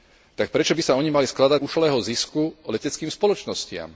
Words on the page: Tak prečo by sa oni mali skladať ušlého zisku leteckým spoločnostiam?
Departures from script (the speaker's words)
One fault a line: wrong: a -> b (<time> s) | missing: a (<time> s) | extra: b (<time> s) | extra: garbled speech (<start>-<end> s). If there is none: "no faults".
no faults